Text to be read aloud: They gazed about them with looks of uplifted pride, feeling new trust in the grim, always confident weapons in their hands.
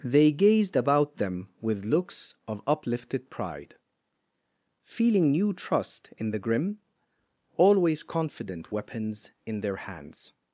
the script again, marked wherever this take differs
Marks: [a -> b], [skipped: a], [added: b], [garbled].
They gazed about them with looks of uplifted pride, feeling new trust in the grim, always confident weapons in their hands.